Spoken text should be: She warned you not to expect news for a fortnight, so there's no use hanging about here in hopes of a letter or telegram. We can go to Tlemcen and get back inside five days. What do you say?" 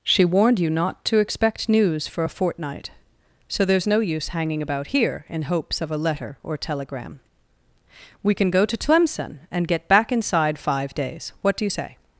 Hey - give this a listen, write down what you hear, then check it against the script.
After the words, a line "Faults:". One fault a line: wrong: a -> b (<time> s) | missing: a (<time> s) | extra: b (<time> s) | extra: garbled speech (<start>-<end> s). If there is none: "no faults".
She warned you not to expect news for a fortnight, so there's no use hanging about here in hopes of a letter or telegram. We can go to Tlemcen and get back inside five days. What do you say?"
Faults:
no faults